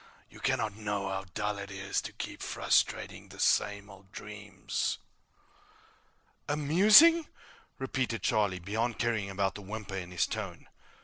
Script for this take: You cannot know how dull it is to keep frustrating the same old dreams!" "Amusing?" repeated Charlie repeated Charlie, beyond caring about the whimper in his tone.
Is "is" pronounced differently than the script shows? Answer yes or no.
no